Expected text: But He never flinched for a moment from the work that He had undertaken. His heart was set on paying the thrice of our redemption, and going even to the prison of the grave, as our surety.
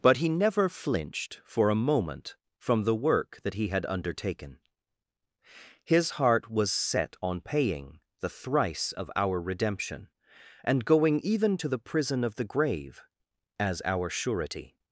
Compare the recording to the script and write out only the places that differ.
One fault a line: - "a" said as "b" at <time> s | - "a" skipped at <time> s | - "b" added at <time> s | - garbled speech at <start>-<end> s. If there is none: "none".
none